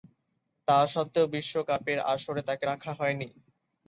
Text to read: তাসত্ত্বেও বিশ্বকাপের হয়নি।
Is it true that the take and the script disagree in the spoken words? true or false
true